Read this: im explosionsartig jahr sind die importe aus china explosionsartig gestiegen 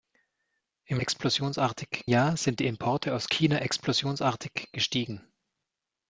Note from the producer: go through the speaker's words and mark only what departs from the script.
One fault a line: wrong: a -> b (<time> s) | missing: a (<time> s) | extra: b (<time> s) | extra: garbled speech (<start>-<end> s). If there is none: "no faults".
no faults